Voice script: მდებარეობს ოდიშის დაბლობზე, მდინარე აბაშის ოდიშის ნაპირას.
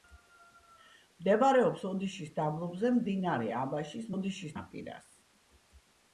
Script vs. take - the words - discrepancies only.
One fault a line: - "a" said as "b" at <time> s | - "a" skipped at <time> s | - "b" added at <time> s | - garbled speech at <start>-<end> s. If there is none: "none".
none